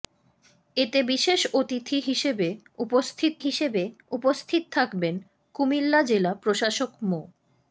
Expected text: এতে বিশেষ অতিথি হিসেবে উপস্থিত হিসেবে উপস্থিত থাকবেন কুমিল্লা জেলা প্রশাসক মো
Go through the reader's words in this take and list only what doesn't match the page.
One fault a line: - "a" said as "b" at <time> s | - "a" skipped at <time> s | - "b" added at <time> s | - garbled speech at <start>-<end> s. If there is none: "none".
none